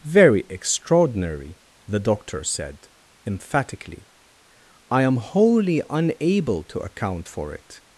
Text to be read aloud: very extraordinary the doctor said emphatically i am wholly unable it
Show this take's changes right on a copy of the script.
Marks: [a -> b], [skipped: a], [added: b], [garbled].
very extraordinary the doctor said emphatically i am wholly unable [added: to account for] it